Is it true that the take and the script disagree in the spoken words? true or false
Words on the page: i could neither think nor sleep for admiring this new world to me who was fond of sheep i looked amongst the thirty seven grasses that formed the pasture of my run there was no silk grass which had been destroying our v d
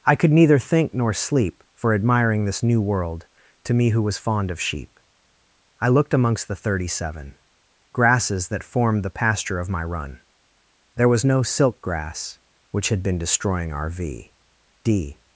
false